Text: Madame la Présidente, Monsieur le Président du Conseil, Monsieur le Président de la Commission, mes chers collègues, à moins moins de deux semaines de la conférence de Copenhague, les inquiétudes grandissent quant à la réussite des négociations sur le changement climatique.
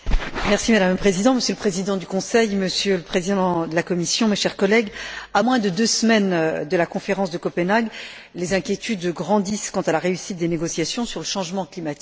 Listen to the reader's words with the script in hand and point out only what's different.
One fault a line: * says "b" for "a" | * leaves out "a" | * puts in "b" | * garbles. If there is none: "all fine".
* leaves out "moins"